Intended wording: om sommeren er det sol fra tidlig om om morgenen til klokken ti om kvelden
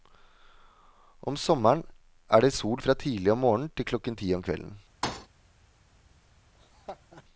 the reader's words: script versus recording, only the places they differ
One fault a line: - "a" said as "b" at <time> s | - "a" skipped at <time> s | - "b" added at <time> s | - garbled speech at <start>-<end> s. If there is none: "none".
- "om" skipped at 3.4 s